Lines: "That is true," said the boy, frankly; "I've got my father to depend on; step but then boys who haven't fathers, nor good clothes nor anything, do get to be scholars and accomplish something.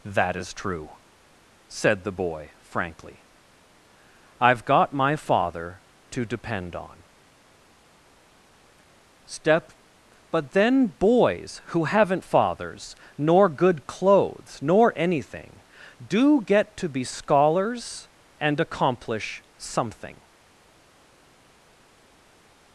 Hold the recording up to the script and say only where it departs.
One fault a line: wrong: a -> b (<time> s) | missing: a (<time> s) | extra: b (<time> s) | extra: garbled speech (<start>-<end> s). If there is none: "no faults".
no faults